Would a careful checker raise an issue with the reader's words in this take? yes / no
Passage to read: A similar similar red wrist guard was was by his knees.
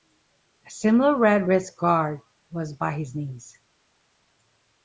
yes